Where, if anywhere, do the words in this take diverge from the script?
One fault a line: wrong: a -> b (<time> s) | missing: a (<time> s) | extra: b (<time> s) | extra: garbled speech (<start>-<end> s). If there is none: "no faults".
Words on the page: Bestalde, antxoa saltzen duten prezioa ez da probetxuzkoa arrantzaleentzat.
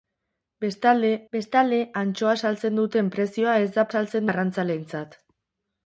extra: bestalde (1.3 s)
wrong: probetxuzkoa -> saltzen (3.9 s)